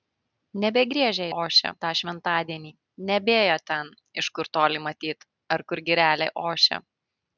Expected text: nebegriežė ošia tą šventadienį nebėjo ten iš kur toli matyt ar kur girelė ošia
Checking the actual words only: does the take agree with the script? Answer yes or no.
yes